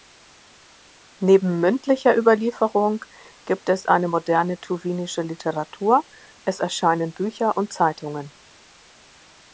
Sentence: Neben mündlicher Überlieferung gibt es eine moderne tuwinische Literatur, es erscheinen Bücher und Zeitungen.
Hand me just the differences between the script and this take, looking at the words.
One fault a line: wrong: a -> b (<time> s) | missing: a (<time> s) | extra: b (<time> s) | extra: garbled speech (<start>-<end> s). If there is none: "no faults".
no faults